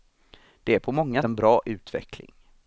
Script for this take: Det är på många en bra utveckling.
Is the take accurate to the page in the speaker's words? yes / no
yes